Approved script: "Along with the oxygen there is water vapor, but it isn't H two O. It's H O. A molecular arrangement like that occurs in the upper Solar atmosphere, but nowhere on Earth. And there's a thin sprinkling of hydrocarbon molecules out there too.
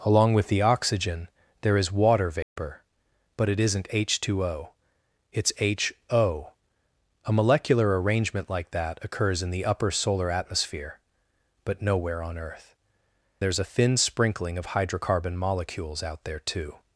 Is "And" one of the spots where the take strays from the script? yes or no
yes